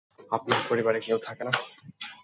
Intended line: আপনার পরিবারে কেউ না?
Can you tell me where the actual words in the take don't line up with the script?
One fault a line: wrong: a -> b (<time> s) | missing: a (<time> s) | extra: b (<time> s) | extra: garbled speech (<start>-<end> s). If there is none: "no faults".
extra: থাকে (1.2 s)